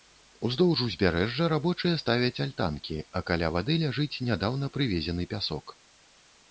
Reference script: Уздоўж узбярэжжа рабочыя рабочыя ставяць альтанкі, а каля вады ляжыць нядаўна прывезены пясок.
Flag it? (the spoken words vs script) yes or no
yes